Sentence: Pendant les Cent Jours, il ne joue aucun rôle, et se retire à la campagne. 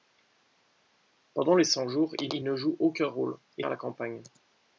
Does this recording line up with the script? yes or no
no